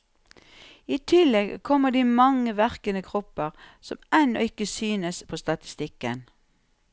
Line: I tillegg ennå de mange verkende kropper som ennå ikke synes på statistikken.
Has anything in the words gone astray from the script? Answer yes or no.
yes